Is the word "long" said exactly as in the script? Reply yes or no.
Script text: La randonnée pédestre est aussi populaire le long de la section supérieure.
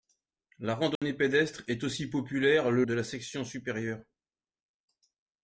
no